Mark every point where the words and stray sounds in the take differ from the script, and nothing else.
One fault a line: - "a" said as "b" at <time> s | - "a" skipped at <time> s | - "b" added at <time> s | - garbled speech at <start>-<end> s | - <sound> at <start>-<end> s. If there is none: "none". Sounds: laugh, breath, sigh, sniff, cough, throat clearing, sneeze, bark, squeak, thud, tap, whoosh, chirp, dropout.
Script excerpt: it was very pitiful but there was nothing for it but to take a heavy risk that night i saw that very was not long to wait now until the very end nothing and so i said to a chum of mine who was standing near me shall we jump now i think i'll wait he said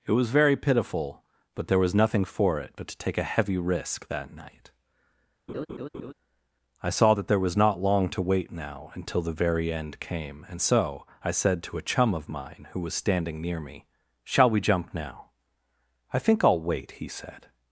- laugh at 5.5-6.1 s
- "very" said as "there" at 7.3 s
- "nothing" said as "came" at 10.0 s